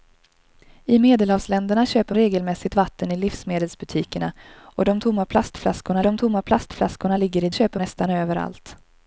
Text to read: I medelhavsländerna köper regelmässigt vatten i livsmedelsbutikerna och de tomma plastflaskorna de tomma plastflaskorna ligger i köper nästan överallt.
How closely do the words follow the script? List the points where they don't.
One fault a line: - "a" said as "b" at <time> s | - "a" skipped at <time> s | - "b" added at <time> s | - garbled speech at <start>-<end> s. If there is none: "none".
none